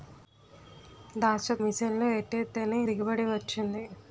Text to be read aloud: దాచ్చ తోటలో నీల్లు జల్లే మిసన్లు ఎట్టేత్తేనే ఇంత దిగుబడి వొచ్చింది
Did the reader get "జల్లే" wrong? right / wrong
wrong